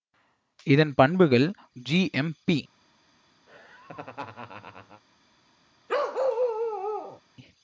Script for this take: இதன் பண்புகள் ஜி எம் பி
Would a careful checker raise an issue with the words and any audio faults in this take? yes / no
yes